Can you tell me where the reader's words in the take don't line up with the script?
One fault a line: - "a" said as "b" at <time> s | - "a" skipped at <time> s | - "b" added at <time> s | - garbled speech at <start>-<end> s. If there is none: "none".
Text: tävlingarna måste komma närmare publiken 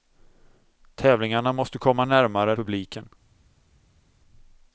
none